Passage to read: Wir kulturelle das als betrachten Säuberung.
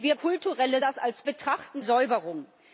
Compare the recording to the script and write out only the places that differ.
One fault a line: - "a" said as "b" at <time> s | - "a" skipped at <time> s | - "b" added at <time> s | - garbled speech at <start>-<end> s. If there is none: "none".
none